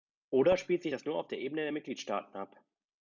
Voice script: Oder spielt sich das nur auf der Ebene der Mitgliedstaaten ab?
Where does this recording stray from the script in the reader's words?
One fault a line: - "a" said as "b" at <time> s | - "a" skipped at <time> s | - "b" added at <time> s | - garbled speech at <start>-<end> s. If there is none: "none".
none